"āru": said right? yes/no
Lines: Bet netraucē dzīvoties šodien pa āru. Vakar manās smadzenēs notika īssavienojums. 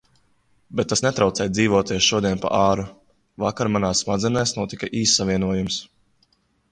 yes